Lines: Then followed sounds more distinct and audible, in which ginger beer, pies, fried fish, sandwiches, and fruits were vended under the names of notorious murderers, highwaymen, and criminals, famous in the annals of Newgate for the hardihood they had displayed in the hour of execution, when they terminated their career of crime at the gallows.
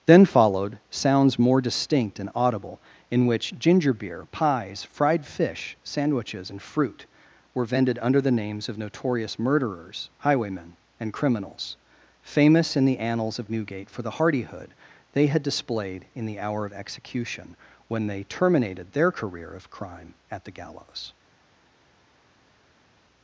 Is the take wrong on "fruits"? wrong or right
wrong